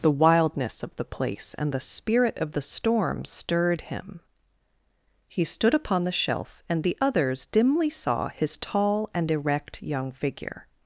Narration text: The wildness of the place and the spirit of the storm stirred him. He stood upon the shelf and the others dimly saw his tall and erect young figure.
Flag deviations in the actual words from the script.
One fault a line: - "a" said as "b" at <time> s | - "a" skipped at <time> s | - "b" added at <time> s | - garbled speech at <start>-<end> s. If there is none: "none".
none